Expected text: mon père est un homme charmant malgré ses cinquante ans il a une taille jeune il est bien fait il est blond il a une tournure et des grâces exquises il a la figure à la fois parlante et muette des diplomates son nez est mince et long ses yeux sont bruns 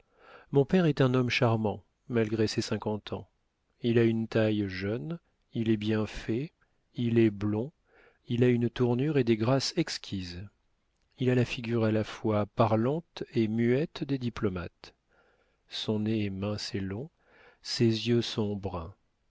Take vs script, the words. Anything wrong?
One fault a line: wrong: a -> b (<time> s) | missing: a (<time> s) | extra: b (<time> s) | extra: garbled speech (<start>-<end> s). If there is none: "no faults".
no faults